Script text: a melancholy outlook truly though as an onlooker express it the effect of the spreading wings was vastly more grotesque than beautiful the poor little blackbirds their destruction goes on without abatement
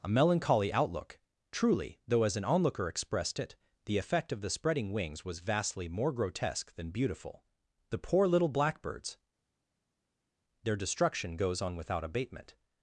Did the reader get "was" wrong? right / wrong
right